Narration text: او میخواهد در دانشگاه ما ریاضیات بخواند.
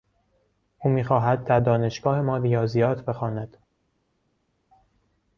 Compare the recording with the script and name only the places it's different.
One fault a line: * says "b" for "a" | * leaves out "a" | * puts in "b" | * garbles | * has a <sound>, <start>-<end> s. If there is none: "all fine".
all fine